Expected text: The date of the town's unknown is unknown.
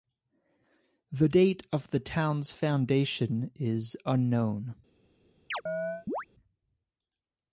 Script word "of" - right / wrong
right